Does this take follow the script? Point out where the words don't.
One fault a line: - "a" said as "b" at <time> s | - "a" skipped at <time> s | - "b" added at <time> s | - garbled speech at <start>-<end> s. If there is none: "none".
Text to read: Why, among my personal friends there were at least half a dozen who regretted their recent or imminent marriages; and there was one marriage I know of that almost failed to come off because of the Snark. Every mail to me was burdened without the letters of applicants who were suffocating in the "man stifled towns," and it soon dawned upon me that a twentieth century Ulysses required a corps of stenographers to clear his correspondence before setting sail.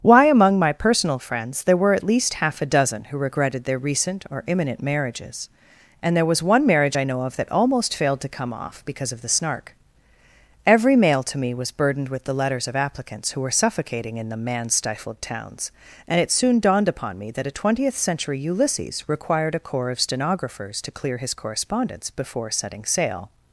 - "without" said as "with" at 12.1 s